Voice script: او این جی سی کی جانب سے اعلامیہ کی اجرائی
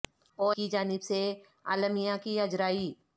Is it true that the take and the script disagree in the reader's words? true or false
true